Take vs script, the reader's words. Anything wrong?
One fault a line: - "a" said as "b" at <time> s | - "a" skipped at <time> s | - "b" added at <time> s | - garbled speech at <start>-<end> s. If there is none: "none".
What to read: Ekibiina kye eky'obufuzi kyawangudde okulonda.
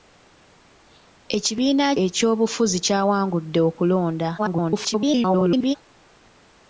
- "kye" skipped at 1.9 s
- garbled speech at 4.4-5.8 s